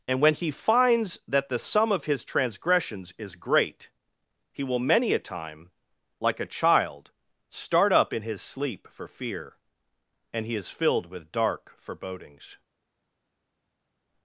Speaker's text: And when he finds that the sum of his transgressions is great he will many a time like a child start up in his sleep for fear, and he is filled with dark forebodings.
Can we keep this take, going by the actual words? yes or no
yes